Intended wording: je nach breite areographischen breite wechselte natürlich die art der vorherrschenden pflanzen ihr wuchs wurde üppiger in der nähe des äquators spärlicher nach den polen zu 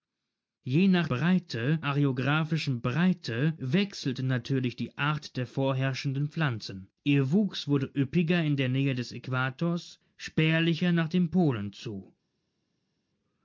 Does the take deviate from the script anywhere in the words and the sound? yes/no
no